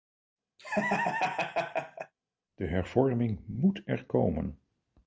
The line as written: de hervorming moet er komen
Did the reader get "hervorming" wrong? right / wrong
right